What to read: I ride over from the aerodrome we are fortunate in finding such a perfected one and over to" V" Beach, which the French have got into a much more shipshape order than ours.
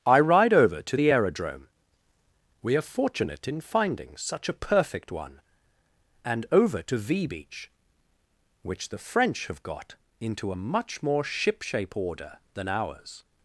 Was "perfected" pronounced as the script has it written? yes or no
no